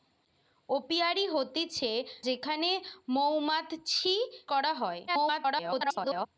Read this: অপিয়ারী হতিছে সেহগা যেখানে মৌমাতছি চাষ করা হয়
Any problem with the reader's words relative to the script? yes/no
yes